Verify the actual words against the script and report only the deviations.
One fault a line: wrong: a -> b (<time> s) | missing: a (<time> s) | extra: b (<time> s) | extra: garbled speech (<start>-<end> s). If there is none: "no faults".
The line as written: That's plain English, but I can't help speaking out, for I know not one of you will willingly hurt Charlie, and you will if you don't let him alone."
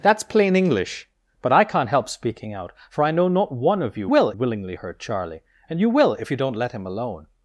no faults